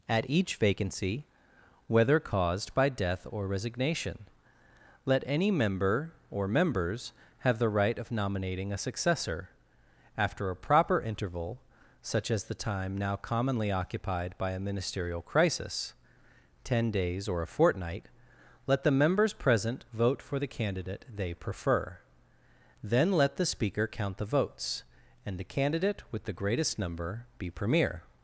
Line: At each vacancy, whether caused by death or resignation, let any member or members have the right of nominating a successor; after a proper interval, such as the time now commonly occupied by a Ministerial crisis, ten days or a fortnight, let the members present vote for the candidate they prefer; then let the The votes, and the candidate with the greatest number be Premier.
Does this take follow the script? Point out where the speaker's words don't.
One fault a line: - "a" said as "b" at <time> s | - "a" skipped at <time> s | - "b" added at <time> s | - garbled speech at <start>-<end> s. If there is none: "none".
- "Speaker count" added at 23.5 s